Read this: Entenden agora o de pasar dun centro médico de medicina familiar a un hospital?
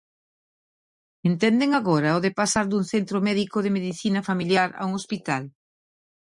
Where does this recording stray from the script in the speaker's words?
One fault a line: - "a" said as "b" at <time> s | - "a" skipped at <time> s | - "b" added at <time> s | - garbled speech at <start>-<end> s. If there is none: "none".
none